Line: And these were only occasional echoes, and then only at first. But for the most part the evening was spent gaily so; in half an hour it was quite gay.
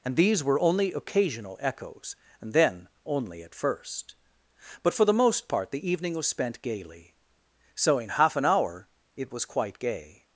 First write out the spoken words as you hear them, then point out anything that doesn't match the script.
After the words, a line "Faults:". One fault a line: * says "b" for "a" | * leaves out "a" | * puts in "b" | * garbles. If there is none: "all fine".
And these were only occasional echoes, and then only at first. But for the most part the evening was spent gaily so; in half an hour it was quite gay.
Faults:
all fine